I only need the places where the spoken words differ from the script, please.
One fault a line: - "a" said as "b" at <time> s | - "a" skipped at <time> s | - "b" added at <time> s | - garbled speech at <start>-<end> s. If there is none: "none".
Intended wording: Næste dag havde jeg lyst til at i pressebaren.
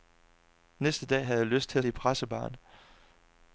none